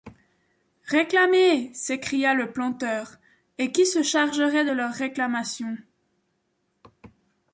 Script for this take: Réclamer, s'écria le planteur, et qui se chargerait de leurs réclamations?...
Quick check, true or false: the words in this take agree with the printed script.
true